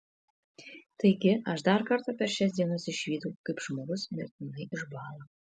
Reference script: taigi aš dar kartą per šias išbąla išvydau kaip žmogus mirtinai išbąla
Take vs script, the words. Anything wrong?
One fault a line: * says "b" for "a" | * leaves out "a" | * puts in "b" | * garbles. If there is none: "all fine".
* says "dienas" for "išbąla"